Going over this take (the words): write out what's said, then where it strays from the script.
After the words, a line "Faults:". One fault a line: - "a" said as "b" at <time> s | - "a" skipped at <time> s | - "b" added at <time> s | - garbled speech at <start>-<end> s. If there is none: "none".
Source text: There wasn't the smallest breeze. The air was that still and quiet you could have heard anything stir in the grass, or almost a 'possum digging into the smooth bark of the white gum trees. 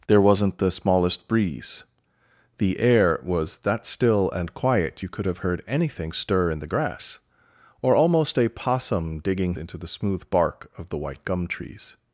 There wasn't the smallest breeze. The air was that still and quiet you could have heard anything stir in the grass, or almost a 'possum digging into the smooth bark of the white gum trees.
Faults:
none